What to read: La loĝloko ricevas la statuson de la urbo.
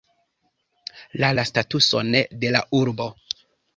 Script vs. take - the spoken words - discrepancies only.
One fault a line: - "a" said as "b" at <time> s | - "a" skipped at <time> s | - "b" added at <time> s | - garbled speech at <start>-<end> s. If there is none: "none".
- "loĝloko ricevas" skipped at 1.3 s